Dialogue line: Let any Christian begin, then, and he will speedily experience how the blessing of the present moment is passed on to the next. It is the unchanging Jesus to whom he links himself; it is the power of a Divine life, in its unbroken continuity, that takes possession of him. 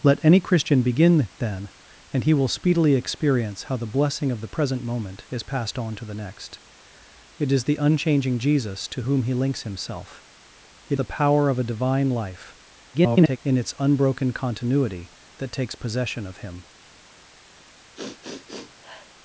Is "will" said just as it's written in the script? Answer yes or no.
yes